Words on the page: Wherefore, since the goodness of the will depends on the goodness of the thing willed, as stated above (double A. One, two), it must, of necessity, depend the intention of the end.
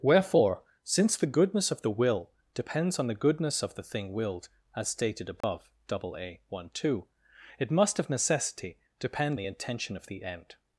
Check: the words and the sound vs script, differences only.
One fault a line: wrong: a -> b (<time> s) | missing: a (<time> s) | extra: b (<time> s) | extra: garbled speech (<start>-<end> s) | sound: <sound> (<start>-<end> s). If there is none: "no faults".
sound: dropout (5.4-5.4 s)